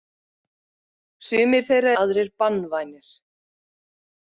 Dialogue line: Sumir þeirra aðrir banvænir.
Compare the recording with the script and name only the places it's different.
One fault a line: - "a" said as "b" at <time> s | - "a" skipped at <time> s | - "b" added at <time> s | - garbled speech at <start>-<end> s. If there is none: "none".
none